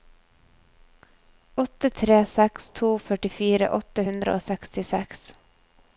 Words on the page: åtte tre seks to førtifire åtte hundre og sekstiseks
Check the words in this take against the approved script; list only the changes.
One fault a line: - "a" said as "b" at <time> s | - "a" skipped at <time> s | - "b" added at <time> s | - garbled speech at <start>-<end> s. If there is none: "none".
none